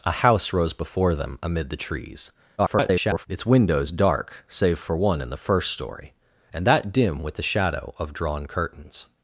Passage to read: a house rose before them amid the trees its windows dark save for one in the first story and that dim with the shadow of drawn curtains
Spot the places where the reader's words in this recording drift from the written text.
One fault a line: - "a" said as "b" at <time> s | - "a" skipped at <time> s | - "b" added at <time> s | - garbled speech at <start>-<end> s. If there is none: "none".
- garbled speech at 2.6-3.3 s